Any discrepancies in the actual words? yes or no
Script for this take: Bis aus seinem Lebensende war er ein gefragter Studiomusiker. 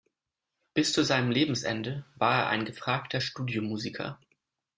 yes